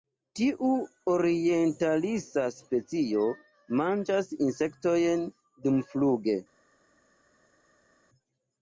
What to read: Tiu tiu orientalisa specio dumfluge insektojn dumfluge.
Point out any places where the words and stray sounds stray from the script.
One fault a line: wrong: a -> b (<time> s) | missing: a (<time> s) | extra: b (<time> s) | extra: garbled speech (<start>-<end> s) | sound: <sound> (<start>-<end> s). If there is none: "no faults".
missing: tiu (0.7 s)
wrong: dumfluge -> manĝas (3.8 s)